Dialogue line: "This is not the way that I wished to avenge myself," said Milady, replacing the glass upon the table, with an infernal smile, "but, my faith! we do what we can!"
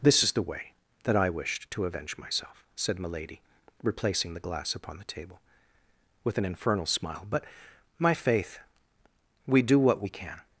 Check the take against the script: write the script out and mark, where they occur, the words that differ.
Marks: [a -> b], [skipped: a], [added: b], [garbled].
"This is [skipped: not] the way that I wished to avenge myself," said Milady, replacing the glass upon the table, with an infernal smile, "but, my faith! we do what we can!"